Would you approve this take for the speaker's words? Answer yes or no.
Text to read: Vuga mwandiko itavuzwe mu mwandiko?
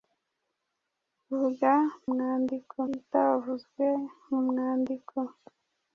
yes